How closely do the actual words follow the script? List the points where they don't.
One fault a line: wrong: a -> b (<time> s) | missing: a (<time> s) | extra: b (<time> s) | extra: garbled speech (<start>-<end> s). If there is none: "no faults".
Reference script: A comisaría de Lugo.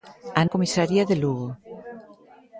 no faults